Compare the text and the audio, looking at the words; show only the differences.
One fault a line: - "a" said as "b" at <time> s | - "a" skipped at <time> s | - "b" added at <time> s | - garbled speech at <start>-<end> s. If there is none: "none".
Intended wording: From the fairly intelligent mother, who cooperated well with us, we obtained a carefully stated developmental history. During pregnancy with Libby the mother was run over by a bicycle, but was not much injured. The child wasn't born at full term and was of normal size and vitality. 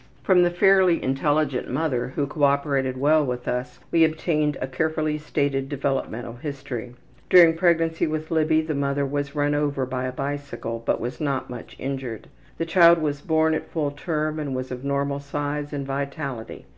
- "wasn't" said as "was" at 13.0 s